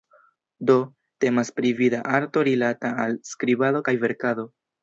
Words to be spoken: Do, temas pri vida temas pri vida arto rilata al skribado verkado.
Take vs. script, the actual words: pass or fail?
fail